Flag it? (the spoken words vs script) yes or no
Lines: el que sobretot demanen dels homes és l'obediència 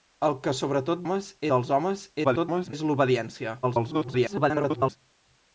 yes